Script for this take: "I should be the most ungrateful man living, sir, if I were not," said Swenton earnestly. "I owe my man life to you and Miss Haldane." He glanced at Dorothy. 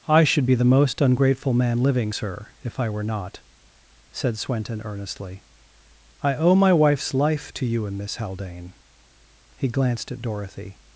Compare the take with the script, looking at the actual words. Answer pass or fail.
fail